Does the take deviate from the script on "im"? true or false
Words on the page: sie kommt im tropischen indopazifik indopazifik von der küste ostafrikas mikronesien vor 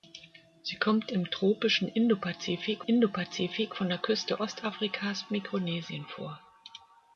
false